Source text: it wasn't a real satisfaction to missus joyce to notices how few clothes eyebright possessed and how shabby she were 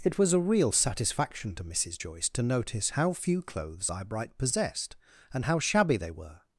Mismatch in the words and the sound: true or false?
true